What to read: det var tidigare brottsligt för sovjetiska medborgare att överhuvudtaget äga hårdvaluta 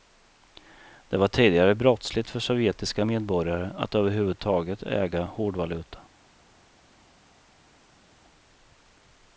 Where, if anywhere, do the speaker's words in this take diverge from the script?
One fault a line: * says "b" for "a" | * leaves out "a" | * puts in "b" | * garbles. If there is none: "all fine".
all fine